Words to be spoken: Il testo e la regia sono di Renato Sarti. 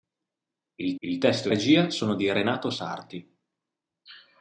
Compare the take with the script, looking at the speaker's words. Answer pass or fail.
fail